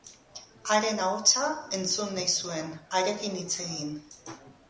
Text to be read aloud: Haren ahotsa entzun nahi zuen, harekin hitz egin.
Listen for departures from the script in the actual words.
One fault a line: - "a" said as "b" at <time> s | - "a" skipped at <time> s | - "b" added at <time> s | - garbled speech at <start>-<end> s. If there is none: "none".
none